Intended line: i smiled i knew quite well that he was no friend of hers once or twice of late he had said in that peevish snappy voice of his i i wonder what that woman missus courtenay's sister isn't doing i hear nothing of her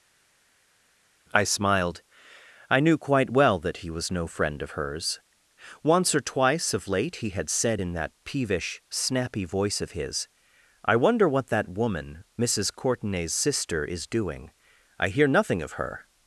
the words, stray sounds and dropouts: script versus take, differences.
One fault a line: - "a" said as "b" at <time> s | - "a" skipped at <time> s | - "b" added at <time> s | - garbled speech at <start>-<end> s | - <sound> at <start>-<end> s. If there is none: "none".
- "i" skipped at 11.0 s
- "isn't" said as "is" at 13.8 s